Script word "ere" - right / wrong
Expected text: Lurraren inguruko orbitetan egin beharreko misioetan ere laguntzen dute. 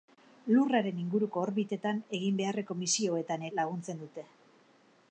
wrong